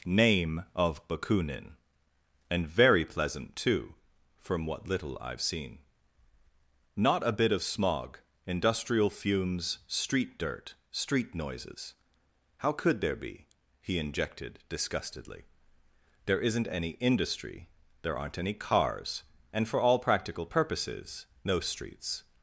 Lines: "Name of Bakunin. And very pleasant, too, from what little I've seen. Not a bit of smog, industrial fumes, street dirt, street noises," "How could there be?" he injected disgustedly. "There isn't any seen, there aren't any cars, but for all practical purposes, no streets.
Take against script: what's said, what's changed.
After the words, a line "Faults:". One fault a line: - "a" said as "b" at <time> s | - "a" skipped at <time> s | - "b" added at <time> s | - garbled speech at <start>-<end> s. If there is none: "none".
"Name of Bakunin. And very pleasant, too, from what little I've seen. Not a bit of smog, industrial fumes, street dirt, street noises," "How could there be?" he injected disgustedly. "There isn't any industry, there aren't any cars, and for all practical purposes, no streets.
Faults:
- "seen" said as "industry" at 17.0 s
- "but" said as "and" at 19.5 s